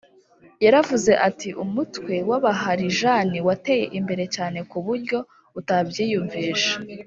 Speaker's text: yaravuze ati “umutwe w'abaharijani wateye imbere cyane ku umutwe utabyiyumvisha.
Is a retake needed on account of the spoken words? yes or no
yes